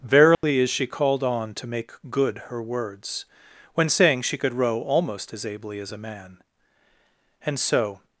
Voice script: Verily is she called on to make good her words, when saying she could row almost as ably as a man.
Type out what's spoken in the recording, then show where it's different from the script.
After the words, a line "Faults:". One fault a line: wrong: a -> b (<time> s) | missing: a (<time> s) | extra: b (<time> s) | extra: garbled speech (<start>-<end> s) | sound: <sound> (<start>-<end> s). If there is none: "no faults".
Verily is she called on to make good her words, when saying she could row almost as ably as a man. And so
Faults:
sound: dropout (0.3-0.4 s)
extra: And so (7.5 s)